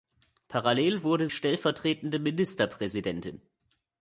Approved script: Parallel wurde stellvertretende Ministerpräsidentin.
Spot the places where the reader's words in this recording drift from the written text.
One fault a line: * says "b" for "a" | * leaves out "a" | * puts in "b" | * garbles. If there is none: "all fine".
all fine